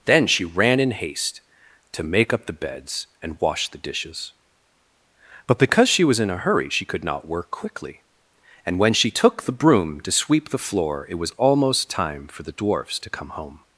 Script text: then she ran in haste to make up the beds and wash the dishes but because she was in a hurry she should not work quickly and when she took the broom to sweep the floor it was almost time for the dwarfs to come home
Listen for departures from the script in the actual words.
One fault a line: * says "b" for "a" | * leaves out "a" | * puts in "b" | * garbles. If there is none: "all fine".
* says "could" for "should"